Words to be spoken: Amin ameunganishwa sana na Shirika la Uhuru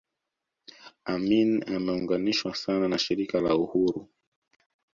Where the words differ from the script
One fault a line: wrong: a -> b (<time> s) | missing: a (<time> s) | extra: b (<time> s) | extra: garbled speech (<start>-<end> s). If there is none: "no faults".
no faults